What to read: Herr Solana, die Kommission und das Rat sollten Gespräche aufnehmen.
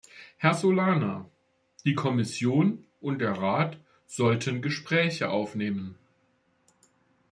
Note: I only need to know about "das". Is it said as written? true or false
false